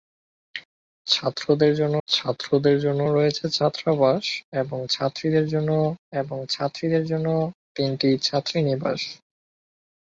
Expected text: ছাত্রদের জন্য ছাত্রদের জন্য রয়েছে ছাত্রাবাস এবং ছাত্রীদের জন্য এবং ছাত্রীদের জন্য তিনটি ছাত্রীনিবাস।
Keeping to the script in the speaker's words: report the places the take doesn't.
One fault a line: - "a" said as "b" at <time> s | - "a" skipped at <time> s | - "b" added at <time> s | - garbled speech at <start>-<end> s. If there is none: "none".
none